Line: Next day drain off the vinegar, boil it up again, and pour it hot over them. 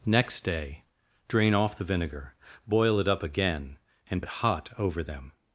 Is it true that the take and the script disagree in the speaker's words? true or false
true